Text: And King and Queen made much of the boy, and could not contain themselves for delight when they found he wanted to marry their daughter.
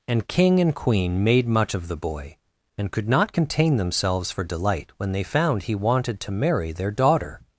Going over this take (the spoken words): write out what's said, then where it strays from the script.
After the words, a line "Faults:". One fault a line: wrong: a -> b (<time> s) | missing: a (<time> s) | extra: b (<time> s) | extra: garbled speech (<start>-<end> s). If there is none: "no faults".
And King and Queen made much of the boy, and could not contain themselves for delight when they found he wanted to marry their daughter.
Faults:
no faults